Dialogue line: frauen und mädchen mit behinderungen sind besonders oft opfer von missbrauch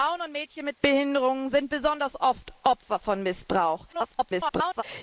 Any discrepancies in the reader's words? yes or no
yes